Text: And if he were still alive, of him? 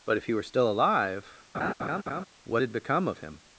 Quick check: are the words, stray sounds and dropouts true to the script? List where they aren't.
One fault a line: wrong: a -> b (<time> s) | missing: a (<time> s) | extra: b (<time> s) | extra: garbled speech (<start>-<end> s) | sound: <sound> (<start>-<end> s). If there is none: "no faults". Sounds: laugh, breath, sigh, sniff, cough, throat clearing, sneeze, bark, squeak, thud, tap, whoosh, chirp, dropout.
wrong: And -> But (0.0 s)
sound: laugh (1.5-2.3 s)
extra: what had become (2.4 s)